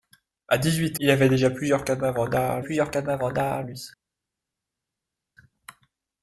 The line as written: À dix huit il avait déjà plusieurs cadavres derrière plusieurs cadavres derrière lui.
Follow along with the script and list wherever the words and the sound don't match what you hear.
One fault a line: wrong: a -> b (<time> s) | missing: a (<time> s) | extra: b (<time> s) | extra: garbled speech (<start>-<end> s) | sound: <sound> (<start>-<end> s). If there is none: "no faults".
no faults